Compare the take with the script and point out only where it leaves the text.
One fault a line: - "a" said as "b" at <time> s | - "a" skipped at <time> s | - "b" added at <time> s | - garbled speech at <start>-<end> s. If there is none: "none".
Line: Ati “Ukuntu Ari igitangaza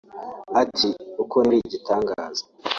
none